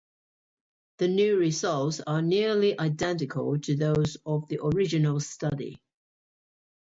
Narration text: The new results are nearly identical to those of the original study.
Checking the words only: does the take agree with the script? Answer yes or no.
yes